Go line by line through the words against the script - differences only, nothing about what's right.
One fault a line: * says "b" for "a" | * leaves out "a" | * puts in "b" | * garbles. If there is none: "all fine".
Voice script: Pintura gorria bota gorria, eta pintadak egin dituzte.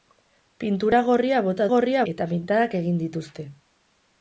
all fine